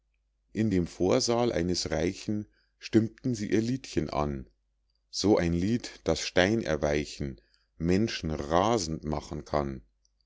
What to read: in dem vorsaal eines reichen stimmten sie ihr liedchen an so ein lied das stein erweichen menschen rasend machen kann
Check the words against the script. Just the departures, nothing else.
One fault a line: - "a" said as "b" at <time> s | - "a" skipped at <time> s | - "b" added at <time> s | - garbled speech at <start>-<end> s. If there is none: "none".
none